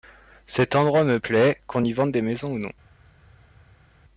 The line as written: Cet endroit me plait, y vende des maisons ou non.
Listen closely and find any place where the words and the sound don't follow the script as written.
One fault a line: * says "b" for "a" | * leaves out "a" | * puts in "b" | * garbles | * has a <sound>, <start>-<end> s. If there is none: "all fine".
* puts in "qu'on"